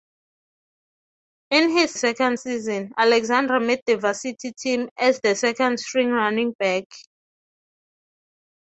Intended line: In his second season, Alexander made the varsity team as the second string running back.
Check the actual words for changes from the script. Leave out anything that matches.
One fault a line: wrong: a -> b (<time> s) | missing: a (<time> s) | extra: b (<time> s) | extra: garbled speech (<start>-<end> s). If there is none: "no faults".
no faults